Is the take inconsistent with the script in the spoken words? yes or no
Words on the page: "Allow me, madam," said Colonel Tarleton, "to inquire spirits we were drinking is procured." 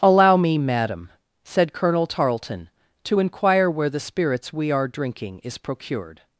yes